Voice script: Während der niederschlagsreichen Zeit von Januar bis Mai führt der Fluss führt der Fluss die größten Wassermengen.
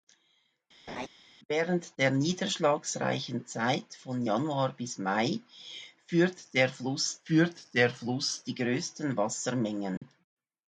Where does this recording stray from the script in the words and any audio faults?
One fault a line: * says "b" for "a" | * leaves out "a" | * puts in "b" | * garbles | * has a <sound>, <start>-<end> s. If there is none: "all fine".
* has a laugh, 0.9-1.1 s
* has a dropout, 10.0-10.0 s